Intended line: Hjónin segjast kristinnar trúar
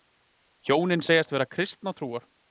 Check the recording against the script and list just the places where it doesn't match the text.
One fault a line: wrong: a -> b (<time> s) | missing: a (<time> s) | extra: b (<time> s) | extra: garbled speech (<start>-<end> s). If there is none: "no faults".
extra: vera (1.4 s)